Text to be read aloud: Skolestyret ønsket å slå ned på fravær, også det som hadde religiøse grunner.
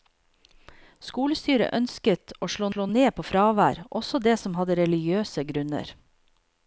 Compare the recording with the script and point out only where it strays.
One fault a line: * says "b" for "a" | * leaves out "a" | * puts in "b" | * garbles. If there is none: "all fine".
* puts in "slå"